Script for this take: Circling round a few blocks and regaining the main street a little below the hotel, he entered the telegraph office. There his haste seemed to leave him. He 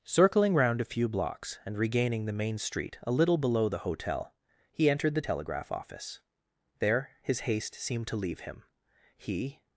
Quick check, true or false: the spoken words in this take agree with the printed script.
true